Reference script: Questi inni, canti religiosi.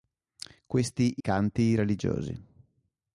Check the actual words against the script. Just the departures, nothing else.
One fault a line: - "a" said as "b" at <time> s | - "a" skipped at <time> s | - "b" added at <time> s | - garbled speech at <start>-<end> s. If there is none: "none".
- "inni" skipped at 1.1 s